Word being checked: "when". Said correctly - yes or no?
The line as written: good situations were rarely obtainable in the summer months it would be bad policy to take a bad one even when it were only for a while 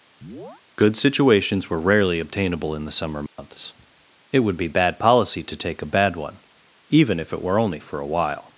no